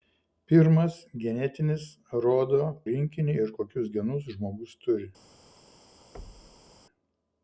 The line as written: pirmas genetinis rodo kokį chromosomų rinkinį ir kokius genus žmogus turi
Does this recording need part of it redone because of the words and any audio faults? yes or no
yes